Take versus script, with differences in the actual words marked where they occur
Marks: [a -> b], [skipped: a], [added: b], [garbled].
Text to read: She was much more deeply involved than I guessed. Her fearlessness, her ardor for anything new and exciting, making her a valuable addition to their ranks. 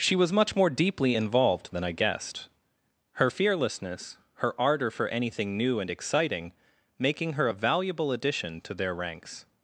She was much more deeply involved than I guessed. Her fearlessness, her ardor for anything new and exciting, making her a valuable addition to their ranks.